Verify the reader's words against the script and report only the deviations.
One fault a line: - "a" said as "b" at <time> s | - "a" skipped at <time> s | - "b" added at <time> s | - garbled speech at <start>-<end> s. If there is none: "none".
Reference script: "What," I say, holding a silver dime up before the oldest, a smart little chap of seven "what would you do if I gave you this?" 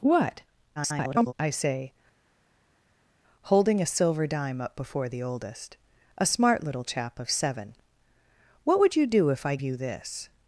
- garbled speech at 0.8-1.3 s
- "gave" skipped at 9.6 s